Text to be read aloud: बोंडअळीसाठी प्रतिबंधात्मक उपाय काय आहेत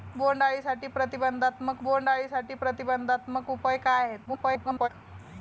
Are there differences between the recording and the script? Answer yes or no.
yes